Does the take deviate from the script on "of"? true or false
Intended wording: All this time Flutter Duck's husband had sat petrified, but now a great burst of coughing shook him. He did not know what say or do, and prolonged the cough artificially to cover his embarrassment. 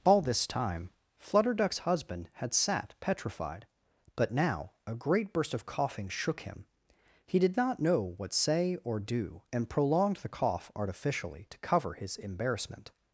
false